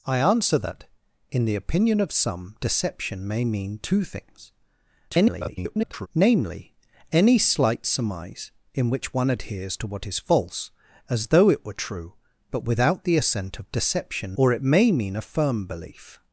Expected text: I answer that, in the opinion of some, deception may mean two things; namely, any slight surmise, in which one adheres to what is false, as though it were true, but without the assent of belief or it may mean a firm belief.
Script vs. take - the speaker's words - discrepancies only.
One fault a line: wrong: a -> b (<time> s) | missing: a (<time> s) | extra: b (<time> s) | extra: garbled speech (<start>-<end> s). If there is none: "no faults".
extra: garbled speech (5.1-6.1 s)
wrong: belief -> deception (13.7 s)